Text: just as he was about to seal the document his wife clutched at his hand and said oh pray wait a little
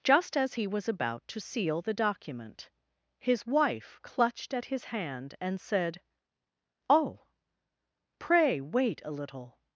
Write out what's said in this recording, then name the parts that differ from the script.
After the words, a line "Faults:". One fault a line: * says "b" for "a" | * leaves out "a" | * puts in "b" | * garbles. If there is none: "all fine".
just as he was about to seal the document his wife clutched at his hand and said oh pray wait a little
Faults:
all fine